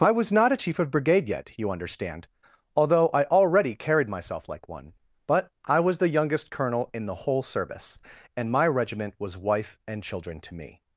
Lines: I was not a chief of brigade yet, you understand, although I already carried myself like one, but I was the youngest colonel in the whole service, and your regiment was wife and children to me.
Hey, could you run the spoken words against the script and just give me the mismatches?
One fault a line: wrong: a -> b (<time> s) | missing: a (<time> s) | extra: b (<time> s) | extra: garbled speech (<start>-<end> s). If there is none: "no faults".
wrong: your -> my (8.5 s)